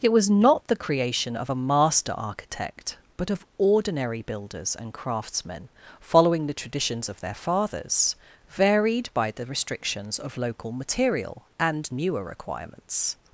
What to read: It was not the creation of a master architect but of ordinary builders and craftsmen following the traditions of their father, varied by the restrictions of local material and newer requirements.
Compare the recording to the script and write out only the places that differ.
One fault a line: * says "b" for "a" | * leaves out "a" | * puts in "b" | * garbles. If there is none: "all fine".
* says "fathers" for "father"